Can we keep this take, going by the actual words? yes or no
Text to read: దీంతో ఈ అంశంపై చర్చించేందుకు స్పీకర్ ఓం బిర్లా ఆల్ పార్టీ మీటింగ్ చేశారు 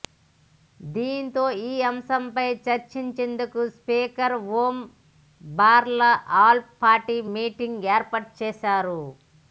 no